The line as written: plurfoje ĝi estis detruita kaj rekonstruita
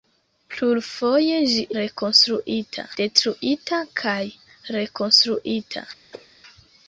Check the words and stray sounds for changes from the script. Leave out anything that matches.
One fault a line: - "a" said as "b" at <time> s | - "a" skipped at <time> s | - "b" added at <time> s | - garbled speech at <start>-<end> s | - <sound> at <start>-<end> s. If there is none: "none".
- "estis" said as "rekonstruita" at 1.8 s
- cough at 6.1-6.3 s